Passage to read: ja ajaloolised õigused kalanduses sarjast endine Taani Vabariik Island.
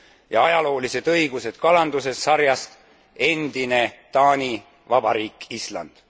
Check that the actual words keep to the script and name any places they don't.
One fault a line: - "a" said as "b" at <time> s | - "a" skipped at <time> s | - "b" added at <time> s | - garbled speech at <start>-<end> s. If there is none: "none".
none